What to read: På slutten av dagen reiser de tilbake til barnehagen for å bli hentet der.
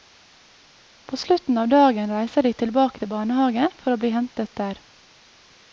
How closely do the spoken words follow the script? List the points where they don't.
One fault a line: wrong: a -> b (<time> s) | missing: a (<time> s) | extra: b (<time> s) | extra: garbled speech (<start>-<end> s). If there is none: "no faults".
no faults